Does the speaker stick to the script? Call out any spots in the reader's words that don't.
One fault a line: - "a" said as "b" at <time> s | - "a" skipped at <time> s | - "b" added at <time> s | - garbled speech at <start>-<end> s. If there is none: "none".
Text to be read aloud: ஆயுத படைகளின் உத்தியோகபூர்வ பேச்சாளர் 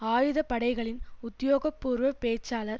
none